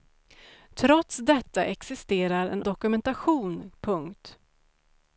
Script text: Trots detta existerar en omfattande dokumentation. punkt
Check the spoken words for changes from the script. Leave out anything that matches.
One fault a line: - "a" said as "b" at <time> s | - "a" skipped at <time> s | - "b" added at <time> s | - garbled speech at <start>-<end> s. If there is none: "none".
- "omfattande" skipped at 2.6 s